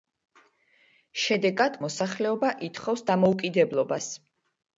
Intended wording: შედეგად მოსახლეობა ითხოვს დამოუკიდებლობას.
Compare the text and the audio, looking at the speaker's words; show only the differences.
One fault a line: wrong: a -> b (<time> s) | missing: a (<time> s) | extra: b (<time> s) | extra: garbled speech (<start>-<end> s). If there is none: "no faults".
no faults